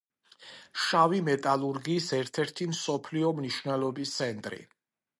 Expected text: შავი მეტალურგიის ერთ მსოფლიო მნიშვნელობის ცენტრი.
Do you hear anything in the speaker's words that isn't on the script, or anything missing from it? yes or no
yes